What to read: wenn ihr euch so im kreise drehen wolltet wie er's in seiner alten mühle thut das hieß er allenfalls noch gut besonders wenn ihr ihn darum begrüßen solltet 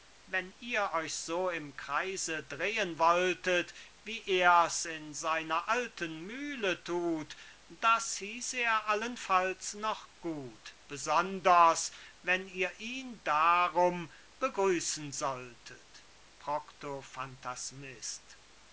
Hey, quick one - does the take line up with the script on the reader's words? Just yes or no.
yes